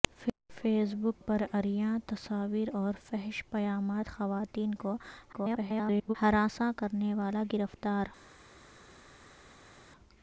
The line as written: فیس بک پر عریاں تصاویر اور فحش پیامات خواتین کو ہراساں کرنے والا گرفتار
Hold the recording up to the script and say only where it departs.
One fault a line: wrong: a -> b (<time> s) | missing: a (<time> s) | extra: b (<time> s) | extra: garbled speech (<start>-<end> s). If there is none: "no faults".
extra: garbled speech (5.3-6.2 s)